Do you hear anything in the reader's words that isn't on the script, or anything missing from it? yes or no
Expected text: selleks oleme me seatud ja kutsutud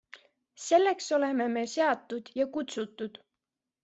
no